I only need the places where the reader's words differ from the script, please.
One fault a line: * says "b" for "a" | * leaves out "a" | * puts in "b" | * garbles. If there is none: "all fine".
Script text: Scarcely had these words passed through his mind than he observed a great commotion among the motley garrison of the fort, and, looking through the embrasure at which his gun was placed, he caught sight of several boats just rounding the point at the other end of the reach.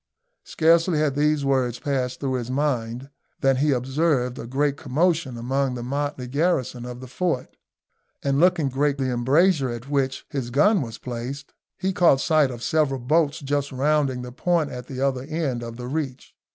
* says "great" for "through"